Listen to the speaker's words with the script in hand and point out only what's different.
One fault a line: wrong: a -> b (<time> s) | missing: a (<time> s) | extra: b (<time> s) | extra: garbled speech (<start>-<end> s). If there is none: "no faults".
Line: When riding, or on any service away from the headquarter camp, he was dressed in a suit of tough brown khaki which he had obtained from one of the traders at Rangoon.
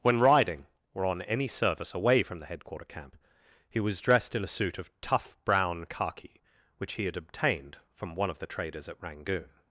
no faults